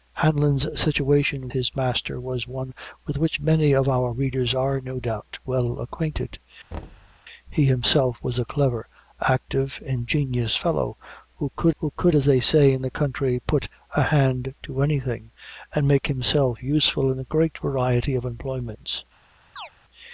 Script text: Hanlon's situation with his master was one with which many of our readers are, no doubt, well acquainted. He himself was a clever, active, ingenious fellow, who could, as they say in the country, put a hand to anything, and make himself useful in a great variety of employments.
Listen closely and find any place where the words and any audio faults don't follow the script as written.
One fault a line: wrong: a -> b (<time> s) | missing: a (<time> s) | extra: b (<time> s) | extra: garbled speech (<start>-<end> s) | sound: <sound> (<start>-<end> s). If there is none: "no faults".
missing: with (1.5 s)
sound: thud (6.7-7.2 s)
extra: who could (11.8 s)
sound: chirp (19.6-19.7 s)